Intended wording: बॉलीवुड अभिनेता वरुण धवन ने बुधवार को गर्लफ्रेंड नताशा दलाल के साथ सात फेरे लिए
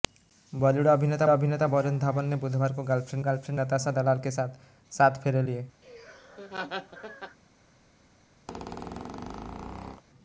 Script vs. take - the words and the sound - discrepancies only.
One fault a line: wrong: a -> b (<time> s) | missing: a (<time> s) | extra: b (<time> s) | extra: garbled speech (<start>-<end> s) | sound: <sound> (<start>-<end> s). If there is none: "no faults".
extra: अभिनेता (1.3 s)
extra: गर्लफ्रेंड (3.2 s)
sound: laugh (5.8-7.4 s)
sound: squeak (8.5-10.0 s)